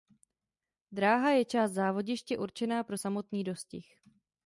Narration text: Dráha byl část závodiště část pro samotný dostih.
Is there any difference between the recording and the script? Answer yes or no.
yes